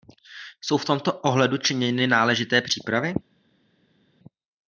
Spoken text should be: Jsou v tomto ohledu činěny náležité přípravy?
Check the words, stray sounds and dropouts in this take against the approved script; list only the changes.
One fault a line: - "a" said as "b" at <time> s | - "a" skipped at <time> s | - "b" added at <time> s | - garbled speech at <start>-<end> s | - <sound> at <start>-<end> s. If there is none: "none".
none